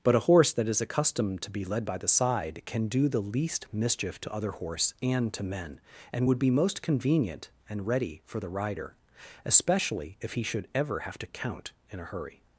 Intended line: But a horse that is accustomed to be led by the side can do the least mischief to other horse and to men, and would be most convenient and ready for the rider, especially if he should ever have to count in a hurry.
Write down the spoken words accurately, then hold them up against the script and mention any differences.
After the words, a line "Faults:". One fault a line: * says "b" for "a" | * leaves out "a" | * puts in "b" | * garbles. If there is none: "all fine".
But a horse that is accustomed to be led by the side can do the least mischief to other horse and to men, and would be most convenient and ready for the rider, especially if he should ever have to count in a hurry.
Faults:
all fine